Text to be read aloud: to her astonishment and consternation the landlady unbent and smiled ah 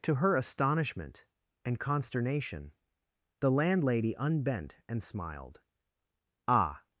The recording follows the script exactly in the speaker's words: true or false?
true